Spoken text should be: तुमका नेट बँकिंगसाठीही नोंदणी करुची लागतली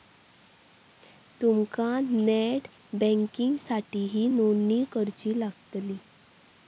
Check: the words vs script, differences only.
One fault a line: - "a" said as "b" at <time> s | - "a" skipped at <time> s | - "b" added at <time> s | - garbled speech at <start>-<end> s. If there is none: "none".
none